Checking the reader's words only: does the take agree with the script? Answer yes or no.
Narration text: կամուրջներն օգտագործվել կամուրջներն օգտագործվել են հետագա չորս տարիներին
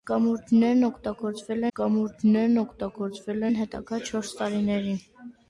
yes